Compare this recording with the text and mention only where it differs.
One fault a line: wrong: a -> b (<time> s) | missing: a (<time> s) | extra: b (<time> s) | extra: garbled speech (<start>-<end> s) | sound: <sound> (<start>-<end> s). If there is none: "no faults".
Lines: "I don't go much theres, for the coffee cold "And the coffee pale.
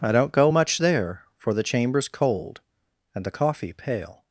wrong: theres -> there (0.8 s)
wrong: coffee -> chamber's (1.6 s)